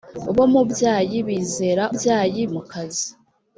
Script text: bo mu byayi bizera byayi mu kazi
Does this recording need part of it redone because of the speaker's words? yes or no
no